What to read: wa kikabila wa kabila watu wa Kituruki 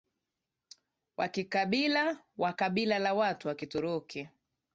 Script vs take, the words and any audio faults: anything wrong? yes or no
yes